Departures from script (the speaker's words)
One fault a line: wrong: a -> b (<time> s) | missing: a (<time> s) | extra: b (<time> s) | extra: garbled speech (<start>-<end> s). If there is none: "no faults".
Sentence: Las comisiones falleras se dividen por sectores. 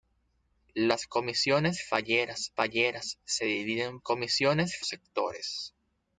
extra: falleras (2.5 s)
wrong: por -> comisiones (4.0 s)